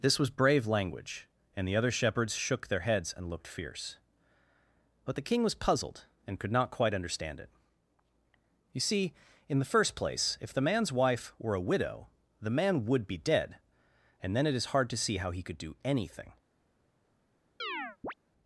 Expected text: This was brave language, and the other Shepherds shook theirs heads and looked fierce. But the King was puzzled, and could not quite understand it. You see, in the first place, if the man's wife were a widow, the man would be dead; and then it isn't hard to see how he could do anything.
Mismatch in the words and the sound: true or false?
true